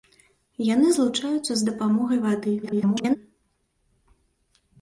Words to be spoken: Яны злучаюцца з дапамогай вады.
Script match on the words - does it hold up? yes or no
no